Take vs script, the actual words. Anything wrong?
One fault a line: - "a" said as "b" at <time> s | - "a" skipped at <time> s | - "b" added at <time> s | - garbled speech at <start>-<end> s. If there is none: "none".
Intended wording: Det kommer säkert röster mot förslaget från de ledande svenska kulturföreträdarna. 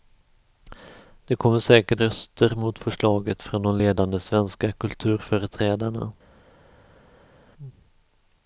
none